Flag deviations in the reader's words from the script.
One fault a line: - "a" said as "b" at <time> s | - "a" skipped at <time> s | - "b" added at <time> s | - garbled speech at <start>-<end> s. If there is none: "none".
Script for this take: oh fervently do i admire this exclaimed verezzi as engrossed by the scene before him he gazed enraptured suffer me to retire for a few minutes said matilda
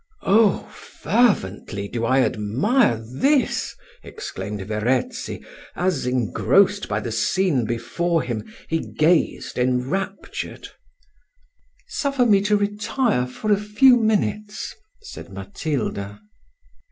none